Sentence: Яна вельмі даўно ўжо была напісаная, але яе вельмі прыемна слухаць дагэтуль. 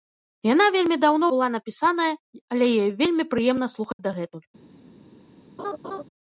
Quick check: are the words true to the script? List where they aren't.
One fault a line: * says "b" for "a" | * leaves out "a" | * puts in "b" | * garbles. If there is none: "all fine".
* leaves out "ўжо"